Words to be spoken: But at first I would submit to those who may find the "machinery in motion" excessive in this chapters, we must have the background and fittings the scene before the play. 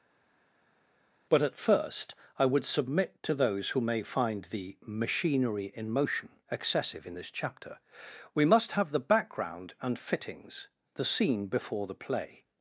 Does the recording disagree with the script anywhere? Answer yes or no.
yes